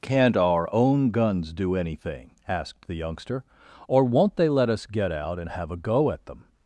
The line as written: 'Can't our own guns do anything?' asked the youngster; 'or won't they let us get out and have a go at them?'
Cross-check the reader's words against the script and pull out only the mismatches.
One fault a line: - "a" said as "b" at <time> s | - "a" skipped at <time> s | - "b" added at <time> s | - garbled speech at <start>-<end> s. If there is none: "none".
none